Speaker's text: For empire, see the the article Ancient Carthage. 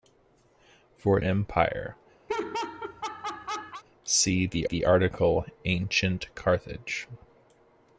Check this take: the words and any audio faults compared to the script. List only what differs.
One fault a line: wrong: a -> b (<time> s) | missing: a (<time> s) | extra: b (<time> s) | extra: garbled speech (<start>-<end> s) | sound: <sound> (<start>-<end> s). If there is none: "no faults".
sound: laugh (2.3-3.8 s)